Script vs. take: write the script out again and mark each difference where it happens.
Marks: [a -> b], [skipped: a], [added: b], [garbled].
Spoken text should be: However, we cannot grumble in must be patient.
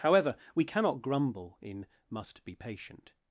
However, we cannot grumble in must be patient.